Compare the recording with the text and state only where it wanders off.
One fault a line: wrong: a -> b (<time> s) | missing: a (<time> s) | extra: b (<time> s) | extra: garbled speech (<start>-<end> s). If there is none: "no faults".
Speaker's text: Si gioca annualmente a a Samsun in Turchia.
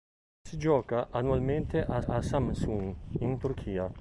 no faults